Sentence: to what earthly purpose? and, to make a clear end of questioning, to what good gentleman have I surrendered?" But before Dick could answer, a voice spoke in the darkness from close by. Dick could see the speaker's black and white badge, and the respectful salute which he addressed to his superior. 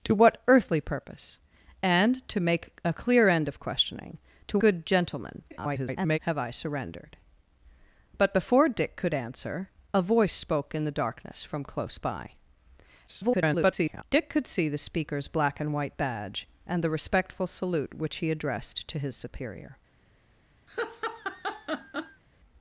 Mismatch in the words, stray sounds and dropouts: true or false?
true